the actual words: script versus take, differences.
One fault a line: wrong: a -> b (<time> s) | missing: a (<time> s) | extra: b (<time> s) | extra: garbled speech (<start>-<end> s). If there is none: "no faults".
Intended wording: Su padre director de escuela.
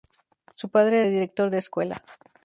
no faults